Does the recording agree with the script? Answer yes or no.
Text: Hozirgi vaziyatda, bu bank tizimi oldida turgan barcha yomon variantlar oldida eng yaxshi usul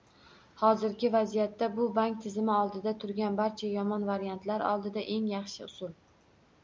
yes